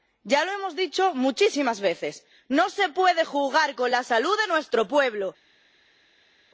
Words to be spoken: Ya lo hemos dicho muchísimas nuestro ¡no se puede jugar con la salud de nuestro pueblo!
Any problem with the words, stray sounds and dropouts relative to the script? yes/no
yes